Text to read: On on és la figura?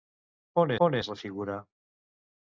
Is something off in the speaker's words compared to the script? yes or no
no